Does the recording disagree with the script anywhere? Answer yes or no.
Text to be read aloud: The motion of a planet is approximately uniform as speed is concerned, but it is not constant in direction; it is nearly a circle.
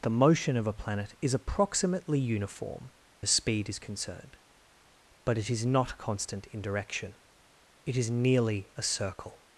no